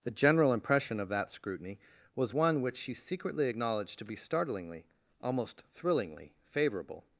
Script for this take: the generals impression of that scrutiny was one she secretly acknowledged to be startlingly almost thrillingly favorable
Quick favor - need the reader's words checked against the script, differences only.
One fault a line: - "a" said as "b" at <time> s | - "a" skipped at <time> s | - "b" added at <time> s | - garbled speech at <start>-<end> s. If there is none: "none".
- "generals" said as "general" at 0.1 s
- "which" added at 2.6 s